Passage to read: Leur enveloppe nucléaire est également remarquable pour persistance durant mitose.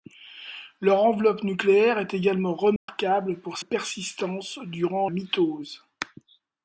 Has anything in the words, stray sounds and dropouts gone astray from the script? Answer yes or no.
yes